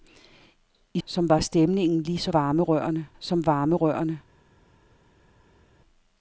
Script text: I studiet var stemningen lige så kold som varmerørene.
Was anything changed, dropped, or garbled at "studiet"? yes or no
yes